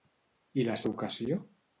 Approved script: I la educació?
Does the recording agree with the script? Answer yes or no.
yes